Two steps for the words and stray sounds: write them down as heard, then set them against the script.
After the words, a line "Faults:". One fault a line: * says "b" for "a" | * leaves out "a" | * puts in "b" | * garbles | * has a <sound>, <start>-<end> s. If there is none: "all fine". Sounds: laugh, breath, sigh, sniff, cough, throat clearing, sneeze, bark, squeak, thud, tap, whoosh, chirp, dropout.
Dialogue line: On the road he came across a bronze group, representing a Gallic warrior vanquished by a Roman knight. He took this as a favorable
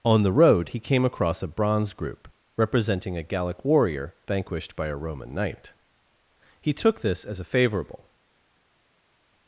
On the road he came across a bronze group, representing a Gallic warrior vanquished by a Roman knight. He took this as a favorable
Faults:
all fine